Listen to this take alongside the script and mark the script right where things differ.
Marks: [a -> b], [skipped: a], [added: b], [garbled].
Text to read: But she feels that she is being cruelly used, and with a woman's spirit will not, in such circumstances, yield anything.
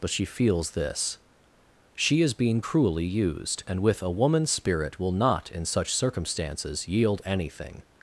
But she feels [that -> this] she is being cruelly used, and with a woman's spirit will not, in such circumstances, yield anything.